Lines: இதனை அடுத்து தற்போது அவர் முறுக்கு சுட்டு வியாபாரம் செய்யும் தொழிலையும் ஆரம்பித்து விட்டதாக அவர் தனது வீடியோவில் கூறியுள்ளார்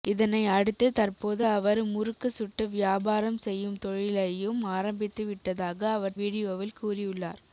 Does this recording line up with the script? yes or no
no